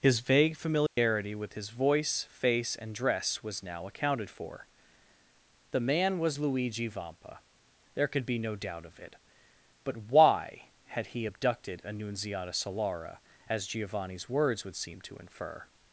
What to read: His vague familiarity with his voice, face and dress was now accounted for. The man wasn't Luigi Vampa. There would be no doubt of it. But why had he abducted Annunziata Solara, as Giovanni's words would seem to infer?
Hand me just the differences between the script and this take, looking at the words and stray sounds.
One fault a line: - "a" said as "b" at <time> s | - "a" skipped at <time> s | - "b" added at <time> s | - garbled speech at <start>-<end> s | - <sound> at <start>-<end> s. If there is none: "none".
- dropout at 0.9-1.0 s
- "wasn't" said as "was" at 6.2 s
- "would" said as "could" at 8.1 s